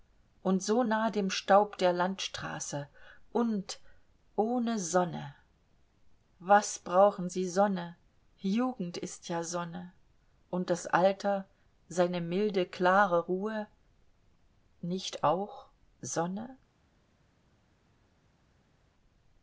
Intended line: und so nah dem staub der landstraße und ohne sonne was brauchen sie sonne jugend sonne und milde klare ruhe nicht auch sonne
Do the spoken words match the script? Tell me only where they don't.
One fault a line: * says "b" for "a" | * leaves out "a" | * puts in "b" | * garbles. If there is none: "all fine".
* puts in "ist ja"
* puts in "das alter seine"